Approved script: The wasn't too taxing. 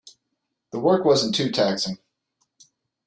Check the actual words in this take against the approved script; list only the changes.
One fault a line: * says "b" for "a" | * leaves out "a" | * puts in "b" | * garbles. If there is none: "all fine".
* puts in "work"